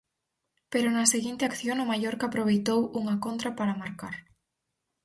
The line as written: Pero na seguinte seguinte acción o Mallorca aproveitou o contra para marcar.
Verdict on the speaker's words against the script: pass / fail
fail